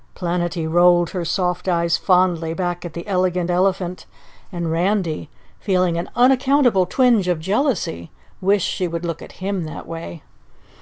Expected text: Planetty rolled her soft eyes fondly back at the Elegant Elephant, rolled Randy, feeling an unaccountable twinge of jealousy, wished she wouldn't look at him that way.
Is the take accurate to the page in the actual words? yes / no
no